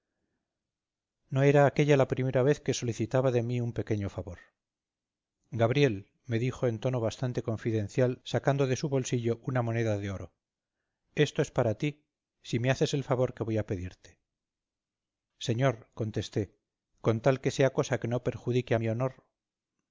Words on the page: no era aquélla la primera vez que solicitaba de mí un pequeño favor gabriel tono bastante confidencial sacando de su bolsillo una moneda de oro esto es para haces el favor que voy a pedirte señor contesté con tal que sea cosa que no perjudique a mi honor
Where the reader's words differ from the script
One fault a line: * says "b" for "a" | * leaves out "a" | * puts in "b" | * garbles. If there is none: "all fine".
* puts in "me dijo en"
* puts in "ti si me"